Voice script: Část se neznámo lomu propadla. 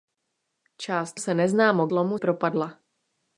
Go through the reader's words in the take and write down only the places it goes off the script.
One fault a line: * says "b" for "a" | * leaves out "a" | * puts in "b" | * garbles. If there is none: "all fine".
all fine